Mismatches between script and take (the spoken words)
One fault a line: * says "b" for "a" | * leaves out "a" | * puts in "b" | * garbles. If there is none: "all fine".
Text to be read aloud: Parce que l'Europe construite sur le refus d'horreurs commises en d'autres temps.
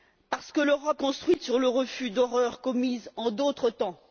all fine